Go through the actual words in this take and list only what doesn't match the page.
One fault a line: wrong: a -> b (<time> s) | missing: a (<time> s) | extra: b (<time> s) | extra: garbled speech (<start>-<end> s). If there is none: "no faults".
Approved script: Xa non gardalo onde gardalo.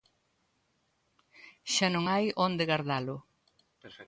wrong: gardalo -> hai (2.1 s)